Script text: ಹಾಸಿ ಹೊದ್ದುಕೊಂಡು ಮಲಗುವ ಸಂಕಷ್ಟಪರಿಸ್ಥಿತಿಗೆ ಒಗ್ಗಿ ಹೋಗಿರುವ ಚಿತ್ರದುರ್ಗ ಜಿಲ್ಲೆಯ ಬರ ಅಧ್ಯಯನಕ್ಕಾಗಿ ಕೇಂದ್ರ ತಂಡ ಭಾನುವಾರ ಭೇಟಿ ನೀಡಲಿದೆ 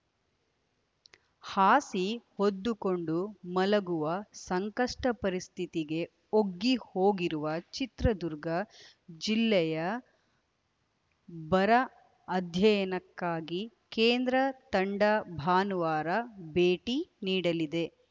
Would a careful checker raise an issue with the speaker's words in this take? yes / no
no